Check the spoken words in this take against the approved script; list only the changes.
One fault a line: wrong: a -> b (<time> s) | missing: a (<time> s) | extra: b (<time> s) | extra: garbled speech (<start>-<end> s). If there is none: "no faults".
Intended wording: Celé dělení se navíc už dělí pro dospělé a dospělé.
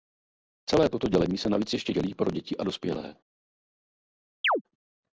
extra: toto (0.9 s)
wrong: už -> ještě (1.7 s)
wrong: dospělé -> děti (2.3 s)